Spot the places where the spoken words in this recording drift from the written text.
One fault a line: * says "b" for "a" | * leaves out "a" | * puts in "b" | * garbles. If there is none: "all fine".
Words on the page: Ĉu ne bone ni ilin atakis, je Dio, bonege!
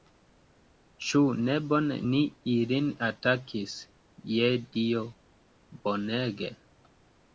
all fine